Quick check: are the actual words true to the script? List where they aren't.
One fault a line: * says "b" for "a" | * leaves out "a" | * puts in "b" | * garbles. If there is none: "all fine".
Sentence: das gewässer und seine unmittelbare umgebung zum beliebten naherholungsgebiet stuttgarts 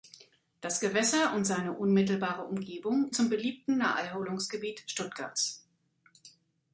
all fine